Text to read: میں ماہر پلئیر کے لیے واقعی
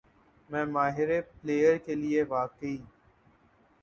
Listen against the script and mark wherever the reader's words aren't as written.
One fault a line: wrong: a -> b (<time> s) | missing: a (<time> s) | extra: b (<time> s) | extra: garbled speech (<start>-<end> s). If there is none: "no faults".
no faults